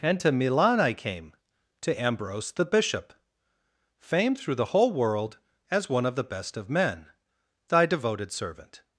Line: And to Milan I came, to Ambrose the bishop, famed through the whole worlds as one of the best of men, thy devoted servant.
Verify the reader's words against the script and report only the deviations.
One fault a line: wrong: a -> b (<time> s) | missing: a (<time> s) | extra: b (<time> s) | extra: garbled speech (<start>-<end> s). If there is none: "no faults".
wrong: worlds -> world (4.9 s)